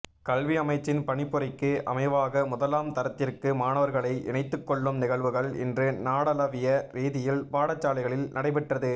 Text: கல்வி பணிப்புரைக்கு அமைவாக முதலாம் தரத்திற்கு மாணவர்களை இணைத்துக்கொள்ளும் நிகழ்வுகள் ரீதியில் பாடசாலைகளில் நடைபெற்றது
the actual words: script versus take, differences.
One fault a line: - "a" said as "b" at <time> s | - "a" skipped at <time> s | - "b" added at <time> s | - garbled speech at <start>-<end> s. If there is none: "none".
- "அமைச்சின்" added at 0.6 s
- "இன்று நாடளாவிய" added at 5.6 s